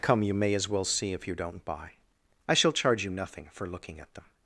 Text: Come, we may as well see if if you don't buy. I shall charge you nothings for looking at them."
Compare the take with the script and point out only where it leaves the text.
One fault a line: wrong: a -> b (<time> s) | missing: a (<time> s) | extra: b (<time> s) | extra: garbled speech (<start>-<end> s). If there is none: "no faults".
wrong: we -> you (0.2 s)
missing: if (1.3 s)
wrong: nothings -> nothing (3.1 s)